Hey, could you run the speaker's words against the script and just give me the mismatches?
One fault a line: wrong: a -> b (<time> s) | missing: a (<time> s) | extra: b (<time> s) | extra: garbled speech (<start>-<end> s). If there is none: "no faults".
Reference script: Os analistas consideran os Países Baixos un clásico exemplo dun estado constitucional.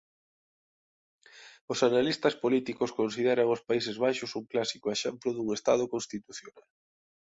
extra: políticos (2.4 s)